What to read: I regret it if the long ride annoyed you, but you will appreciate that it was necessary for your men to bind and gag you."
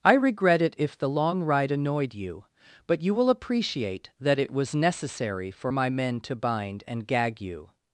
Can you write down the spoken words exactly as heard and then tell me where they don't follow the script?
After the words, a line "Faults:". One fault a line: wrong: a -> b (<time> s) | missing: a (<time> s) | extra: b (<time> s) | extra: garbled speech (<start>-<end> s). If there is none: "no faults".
I regret it if the long ride annoyed you, but you will appreciate that it was necessary for my men to bind and gag you."
Faults:
wrong: your -> my (5.7 s)